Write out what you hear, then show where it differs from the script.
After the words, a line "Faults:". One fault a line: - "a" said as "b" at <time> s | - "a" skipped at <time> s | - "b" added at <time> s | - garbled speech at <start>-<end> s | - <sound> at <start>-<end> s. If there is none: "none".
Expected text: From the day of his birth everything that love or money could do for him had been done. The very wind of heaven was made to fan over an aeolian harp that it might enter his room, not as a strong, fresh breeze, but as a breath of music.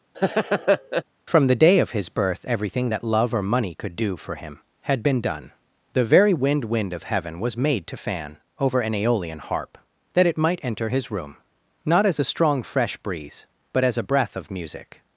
From the day of his birth everything that love or money could do for him had been done. The very wind wind of heaven was made to fan over an aeolian harp that it might enter his room, not as a strong, fresh breeze, but as a breath of music.
Faults:
- laugh at 0.1-1.0 s
- "wind" added at 6.6 s